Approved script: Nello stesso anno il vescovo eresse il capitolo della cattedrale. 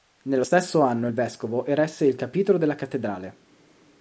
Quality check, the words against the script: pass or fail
pass